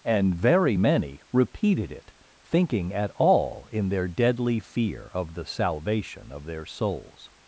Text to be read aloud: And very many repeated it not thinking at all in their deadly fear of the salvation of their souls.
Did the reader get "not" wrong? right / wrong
wrong